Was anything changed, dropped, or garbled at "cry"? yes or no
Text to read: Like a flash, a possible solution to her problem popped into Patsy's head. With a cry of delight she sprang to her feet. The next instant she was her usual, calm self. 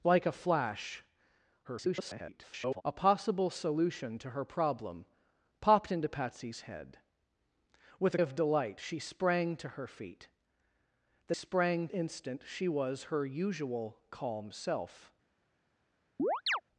yes